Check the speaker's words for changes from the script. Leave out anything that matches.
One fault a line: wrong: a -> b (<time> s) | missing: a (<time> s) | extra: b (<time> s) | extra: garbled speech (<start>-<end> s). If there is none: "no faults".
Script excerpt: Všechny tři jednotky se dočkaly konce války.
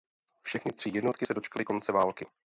no faults